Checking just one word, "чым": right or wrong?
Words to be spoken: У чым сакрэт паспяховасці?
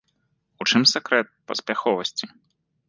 right